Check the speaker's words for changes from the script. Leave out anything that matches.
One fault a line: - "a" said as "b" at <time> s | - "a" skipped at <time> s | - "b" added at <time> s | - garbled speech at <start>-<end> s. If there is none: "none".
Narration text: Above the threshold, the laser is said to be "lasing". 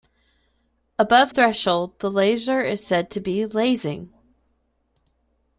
- "the" skipped at 1.3 s